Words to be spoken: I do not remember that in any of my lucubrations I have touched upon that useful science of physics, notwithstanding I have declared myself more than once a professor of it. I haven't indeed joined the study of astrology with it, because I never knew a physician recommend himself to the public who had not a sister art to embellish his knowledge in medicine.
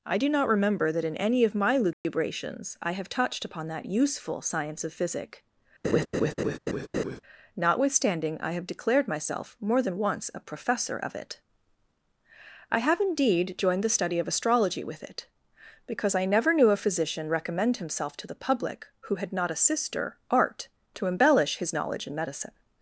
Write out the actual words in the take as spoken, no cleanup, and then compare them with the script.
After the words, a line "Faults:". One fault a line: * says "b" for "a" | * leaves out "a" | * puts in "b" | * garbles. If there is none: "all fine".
I do not remember that in any of my lucubrations I have touched upon that useful science of physic, notwithstanding I have declared myself more than once a professor of it. I have indeed joined the study of astrology with it, because I never knew a physician recommend himself to the public who had not a sister art to embellish his knowledge in medicine.
Faults:
* says "physic" for "physics"
* says "have" for "haven't"